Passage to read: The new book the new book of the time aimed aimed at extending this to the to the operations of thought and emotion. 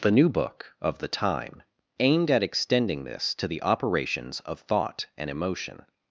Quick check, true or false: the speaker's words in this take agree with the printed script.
false